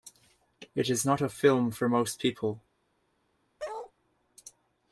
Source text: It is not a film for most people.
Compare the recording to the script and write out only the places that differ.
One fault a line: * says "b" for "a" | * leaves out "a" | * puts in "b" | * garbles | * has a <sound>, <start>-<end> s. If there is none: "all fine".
* has a bark, 3.6-3.9 s